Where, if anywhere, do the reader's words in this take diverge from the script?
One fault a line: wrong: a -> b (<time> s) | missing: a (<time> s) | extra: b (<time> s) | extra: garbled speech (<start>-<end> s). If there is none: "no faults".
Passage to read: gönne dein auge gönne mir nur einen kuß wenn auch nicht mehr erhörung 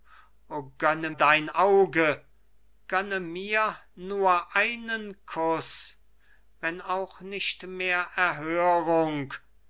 no faults